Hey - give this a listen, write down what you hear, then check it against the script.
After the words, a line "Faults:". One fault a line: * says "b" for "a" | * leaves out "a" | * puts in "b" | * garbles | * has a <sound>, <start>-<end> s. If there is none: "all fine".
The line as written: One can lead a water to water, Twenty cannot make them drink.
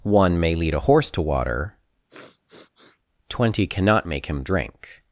One may lead a horse to water, Twenty cannot make him drink.
Faults:
* says "may" for "can"
* says "horse" for "water"
* has a sniff, 2.1-3.0 s
* says "him" for "them"